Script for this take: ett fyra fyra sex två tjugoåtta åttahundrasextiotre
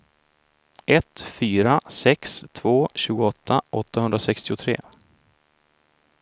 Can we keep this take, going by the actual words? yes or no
no